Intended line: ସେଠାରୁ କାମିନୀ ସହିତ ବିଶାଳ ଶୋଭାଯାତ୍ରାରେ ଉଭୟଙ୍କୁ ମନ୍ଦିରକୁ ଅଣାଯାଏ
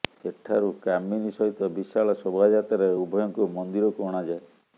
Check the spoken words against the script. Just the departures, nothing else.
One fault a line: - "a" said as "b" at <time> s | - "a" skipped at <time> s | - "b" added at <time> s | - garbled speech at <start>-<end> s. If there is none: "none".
none